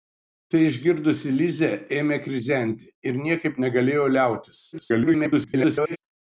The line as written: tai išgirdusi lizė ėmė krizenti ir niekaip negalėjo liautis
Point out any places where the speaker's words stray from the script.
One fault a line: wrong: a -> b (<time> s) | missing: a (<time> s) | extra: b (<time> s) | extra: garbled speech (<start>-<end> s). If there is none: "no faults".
extra: garbled speech (4.7-6.0 s)